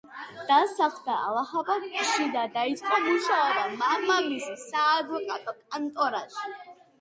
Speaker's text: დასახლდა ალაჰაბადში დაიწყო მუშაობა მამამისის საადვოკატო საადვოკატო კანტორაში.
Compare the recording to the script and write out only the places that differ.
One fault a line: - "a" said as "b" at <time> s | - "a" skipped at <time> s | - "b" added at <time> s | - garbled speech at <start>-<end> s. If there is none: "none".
- "და" added at 2.4 s
- "საადვოკატო" skipped at 5.5 s